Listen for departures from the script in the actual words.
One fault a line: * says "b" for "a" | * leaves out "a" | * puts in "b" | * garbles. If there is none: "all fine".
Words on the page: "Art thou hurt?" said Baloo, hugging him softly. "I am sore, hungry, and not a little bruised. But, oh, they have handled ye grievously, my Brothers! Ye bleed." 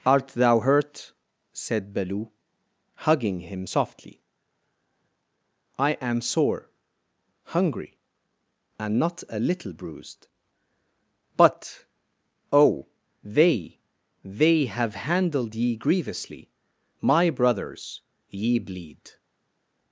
* puts in "they"